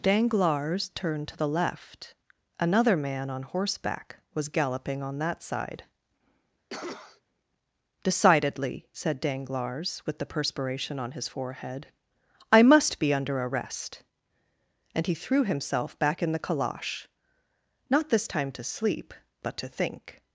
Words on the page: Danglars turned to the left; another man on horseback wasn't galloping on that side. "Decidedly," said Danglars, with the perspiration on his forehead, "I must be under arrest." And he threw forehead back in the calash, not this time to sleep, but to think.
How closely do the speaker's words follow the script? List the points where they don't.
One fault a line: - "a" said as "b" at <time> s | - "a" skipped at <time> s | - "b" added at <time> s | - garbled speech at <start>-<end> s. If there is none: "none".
- "wasn't" said as "was" at 4.3 s
- "forehead" said as "himself" at 15.4 s